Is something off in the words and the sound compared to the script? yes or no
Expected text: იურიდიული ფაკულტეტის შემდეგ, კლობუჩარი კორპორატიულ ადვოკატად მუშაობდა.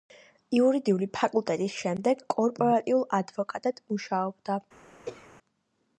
yes